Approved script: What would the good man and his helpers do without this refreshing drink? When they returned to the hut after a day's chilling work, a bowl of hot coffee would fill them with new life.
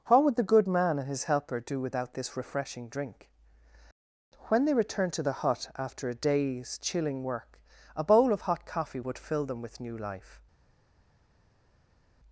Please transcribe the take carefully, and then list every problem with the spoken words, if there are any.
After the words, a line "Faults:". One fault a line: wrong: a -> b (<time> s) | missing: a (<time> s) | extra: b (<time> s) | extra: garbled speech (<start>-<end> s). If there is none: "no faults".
What would the good man and his helper do without this refreshing drink? When they returned to the hut after a day's chilling work, a bowl of hot coffee would fill them with new life.
Faults:
wrong: helpers -> helper (1.2 s)